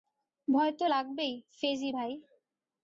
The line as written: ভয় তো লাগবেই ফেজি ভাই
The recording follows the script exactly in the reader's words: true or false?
true